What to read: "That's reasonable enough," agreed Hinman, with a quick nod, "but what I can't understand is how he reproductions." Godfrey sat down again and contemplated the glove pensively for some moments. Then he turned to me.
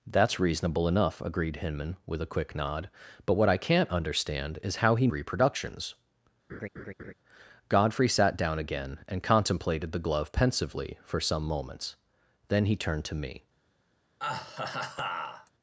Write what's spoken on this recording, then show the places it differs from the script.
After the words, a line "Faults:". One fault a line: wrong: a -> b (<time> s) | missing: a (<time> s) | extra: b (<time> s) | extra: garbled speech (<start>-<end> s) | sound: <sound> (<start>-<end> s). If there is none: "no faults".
"That's reasonable enough," agreed Hinman, with a quick nod, "but what I can't understand is how he reproductions." Godfrey sat down again and contemplated the glove pensively for some moments. Then he turned to me.
Faults:
sound: laugh (6.5-7.1 s)
sound: laugh (14.2-15.5 s)